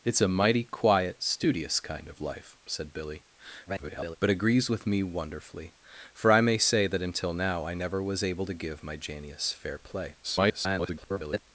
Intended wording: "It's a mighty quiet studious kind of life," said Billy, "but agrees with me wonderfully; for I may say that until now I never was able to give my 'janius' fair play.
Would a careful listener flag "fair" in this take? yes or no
no